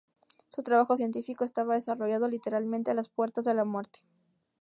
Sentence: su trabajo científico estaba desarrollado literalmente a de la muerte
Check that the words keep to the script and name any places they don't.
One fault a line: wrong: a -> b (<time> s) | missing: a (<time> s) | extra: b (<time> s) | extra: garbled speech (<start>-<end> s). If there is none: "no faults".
extra: las puertas (2.9 s)